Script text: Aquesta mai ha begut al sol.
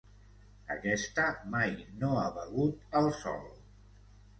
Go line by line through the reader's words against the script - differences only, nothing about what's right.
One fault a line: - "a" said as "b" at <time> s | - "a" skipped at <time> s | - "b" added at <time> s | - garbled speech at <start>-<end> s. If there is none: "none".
- "no" added at 2.0 s